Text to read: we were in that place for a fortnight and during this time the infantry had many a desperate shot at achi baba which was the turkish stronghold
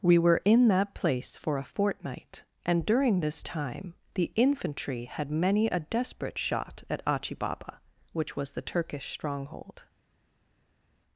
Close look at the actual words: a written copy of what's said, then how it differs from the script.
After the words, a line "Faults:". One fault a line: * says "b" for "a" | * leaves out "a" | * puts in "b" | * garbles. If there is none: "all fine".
we were in that place for a fortnight and during this time the infantry had many a desperate shot at achi baba which was the turkish stronghold
Faults:
all fine